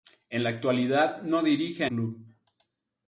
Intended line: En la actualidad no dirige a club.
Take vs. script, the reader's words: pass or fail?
pass